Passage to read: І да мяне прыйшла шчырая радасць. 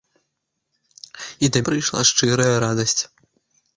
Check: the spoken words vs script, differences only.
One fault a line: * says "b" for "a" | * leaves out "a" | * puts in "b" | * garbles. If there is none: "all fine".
* leaves out "мяне"